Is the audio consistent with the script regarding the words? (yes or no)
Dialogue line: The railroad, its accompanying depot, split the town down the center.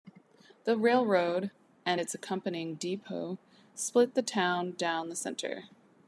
no